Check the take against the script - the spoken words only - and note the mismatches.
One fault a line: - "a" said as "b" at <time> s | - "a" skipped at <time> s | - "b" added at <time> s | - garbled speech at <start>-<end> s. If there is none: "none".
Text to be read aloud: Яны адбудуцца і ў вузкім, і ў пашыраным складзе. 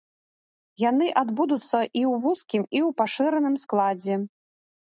none